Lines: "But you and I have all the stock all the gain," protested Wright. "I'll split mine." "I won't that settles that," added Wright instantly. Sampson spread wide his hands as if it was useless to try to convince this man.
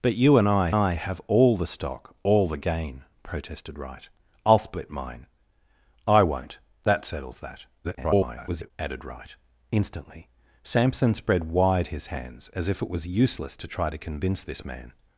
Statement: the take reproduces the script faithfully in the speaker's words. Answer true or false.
false